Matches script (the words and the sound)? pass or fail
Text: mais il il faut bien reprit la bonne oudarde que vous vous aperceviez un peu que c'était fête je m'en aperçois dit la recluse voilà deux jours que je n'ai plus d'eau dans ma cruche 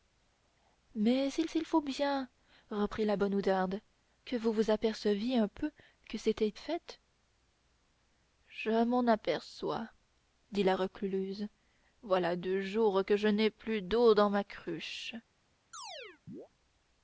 fail